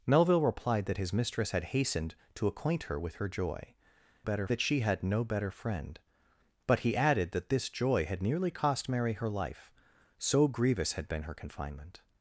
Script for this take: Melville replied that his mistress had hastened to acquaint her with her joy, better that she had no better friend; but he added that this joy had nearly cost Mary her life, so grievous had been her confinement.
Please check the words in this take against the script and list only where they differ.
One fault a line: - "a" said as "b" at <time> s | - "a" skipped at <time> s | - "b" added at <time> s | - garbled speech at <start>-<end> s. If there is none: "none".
none